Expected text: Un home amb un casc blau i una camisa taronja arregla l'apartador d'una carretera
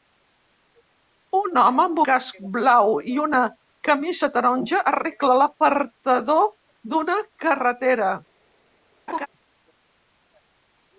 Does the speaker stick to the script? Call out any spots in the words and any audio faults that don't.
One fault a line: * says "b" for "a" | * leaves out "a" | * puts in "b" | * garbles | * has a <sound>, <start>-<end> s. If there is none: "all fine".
* leaves out "un"
* has a laugh, 9.1-9.3 s